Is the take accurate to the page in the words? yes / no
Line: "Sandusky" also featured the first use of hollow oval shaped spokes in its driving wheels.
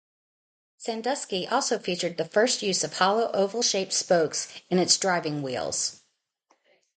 yes